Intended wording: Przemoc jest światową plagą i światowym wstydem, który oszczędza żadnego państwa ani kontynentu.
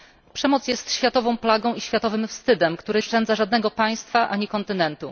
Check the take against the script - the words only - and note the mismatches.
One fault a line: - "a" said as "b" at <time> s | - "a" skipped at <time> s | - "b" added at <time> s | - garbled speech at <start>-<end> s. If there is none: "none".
none